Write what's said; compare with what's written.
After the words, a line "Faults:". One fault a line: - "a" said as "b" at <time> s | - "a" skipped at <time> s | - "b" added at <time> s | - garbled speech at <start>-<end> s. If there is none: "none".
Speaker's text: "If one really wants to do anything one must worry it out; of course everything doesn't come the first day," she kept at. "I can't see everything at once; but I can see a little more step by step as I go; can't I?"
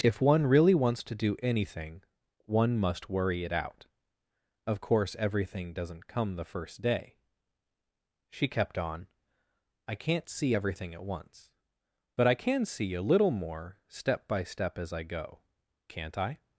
"If one really wants to do anything one must worry it out; of course everything doesn't come the first day," she kept on. "I can't see everything at once; but I can see a little more step by step as I go; can't I?"
Faults:
- "at" said as "on" at 8.8 s